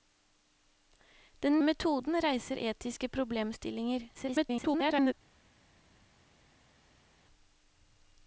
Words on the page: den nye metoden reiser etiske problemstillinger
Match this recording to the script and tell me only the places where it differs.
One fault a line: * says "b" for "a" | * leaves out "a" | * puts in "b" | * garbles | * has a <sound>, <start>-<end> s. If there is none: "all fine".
* leaves out "nye"
* garbles